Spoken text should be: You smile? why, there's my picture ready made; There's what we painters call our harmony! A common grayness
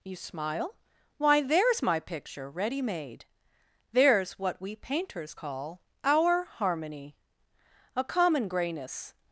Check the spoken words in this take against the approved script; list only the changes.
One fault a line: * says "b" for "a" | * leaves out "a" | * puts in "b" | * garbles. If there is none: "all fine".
all fine